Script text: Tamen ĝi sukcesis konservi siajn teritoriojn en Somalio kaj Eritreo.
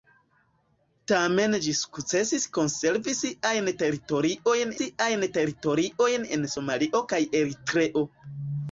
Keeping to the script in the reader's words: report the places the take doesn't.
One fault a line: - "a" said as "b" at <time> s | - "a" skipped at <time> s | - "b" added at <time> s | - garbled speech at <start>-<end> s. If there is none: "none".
- "siajn teritoriojn" added at 4.8 s